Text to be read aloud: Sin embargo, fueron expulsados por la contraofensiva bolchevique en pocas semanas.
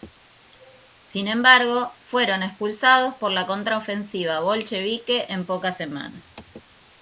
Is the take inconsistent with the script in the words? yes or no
no